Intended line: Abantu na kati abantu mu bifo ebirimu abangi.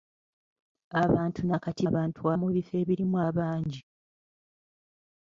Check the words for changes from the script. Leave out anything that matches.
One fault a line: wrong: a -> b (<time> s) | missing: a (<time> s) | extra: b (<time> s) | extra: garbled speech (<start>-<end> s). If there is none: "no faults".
no faults